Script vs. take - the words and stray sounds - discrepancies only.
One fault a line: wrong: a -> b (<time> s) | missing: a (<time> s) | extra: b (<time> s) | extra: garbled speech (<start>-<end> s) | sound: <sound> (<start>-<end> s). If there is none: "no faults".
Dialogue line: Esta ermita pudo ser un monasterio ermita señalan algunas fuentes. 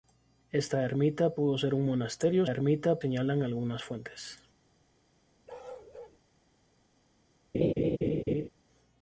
sound: bark (5.5-6.2 s)
sound: laugh (7.5-8.5 s)